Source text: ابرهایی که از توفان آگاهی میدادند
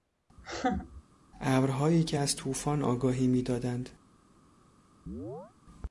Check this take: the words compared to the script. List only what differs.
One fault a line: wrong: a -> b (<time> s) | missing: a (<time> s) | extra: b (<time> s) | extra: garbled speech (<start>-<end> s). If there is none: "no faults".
no faults